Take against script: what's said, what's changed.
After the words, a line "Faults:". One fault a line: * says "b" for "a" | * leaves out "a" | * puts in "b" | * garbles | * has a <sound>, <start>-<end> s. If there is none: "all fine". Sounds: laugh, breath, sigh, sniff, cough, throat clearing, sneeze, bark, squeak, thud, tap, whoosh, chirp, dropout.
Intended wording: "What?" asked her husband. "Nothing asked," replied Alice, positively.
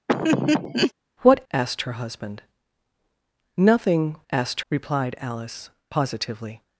"What?" asked her husband. "Nothing asked," replied Alice, positively.
Faults:
* has a laugh, 0.1-0.9 s